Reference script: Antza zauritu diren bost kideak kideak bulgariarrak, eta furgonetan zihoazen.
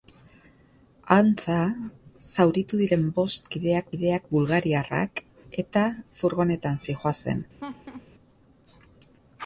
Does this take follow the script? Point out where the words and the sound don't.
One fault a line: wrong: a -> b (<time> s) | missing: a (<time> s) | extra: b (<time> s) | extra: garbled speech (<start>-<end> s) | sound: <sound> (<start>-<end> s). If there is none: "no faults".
sound: laugh (7.6-8.1 s)